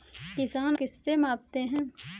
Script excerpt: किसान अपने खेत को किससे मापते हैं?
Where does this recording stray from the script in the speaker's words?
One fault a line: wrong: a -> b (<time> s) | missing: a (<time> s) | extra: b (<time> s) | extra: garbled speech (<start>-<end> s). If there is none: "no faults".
missing: अपने खेत को (0.8 s)